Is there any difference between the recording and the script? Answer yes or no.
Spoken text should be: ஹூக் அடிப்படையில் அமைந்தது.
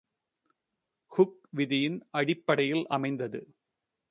yes